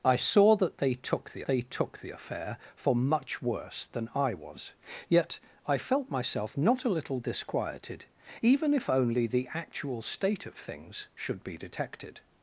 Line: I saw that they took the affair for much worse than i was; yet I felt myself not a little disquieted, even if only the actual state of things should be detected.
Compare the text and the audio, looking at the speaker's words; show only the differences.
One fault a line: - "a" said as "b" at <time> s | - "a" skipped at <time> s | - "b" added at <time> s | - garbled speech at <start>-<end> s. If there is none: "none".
- "they took the" added at 1.5 s